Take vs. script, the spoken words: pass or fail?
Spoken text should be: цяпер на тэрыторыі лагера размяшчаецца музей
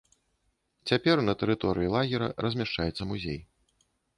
pass